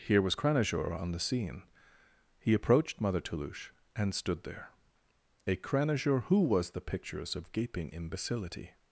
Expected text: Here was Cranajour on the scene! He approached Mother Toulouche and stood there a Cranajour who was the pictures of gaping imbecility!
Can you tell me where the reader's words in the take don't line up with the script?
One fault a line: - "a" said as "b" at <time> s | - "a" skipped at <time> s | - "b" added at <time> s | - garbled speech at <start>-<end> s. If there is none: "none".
none